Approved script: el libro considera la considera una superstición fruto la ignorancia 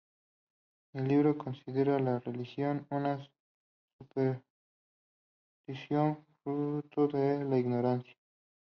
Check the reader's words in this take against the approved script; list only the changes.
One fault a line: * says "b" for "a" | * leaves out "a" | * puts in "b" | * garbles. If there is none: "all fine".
* says "religión" for "considera"
* puts in "de"